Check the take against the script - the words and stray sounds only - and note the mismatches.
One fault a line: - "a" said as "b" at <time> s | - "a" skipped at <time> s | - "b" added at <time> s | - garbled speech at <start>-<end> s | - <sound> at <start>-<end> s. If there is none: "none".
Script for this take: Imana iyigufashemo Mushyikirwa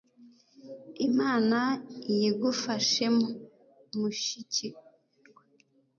none